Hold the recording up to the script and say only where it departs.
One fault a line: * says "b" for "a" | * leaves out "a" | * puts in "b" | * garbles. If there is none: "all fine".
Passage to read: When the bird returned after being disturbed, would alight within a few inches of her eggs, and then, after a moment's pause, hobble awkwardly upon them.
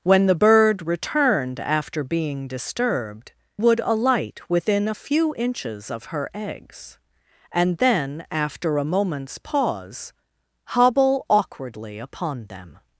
all fine